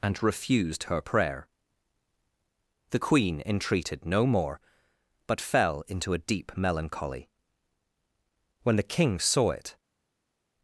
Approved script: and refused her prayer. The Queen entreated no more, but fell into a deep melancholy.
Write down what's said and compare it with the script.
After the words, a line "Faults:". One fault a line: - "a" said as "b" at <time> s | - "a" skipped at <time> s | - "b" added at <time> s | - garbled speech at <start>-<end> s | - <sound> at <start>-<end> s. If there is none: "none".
and refused her prayer. The Queen entreated no more, but fell into a deep melancholy. When the King saw it
Faults:
- "When the King saw it" added at 8.6 s